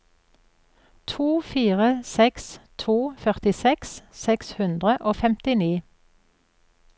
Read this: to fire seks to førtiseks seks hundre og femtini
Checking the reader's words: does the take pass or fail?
pass